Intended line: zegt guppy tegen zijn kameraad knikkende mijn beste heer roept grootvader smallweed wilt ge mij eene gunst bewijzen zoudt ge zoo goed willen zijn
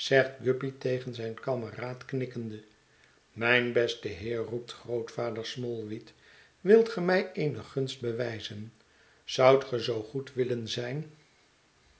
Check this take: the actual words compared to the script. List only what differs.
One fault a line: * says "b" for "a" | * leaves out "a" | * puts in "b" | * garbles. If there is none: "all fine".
all fine